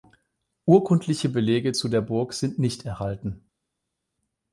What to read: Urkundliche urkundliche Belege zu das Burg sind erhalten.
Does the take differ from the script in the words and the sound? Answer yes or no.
yes